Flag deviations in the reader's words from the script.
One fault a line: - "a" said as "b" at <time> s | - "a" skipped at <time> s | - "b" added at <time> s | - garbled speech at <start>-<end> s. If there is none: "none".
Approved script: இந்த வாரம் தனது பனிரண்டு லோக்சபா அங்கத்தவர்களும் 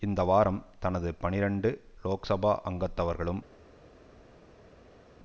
none